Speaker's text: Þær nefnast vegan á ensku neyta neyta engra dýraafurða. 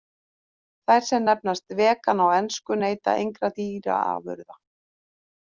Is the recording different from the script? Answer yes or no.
yes